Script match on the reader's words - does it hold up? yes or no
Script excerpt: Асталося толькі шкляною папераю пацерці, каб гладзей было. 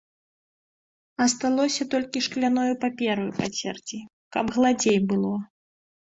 yes